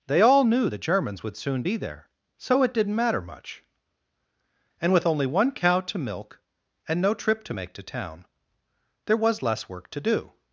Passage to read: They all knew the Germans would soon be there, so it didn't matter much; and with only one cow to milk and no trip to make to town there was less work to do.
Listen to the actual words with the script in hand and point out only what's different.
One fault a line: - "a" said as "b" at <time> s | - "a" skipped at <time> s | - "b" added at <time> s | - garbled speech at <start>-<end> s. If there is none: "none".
none